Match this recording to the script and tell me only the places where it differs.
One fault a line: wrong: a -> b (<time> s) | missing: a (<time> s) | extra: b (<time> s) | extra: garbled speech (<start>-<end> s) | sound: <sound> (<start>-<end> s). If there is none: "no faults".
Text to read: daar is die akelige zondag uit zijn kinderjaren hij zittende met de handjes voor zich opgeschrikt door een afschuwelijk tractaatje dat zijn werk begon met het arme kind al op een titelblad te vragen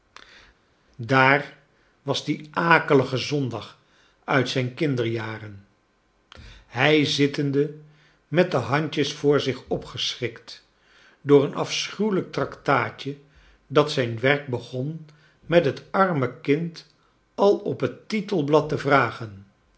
wrong: is -> was (2.0 s)
wrong: een -> het (17.8 s)